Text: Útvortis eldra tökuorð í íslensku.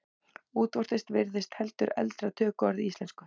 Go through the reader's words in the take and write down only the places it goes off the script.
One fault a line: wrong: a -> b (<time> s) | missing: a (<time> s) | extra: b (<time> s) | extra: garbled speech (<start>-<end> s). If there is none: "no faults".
extra: virðist heldur (1.2 s)